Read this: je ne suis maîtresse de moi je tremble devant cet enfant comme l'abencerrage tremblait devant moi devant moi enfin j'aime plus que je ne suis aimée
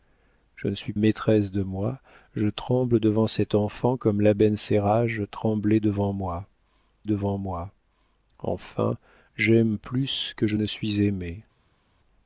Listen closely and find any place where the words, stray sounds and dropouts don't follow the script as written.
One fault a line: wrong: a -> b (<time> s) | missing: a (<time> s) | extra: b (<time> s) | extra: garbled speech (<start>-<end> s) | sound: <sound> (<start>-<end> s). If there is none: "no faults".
no faults